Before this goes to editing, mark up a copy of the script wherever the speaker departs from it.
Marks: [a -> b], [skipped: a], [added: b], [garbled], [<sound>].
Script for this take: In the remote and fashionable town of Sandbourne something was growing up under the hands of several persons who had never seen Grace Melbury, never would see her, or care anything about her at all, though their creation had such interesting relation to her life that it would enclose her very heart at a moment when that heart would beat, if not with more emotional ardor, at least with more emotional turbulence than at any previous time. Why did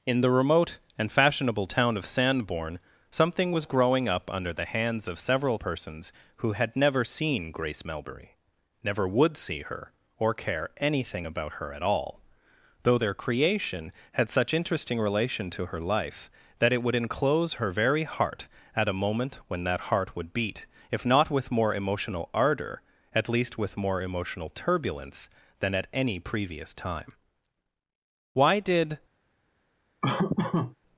In the remote and fashionable town of Sandbourne something was growing up under the hands of several persons who had never seen Grace Melbury, never would see her, or care anything about her at all, though their creation had such interesting relation to her life that it would enclose her very heart at a moment when that heart would beat, if not with more emotional ardor, at least with more emotional turbulence than at any previous time. Why did [laugh]